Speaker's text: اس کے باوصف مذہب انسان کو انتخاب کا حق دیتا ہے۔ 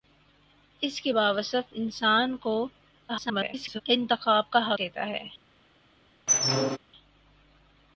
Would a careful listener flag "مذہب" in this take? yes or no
yes